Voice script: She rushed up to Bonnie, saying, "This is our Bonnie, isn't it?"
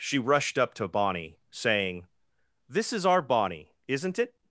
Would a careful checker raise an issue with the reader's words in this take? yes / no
no